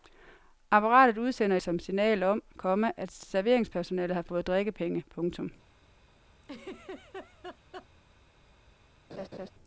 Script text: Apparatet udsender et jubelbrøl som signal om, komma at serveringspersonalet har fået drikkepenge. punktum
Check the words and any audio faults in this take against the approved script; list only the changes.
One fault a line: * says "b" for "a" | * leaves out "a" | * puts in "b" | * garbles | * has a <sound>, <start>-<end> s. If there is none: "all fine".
* leaves out "et jubelbrøl"
* has a laugh, 6.4-7.9 s
* has a laugh, 9.1-9.5 s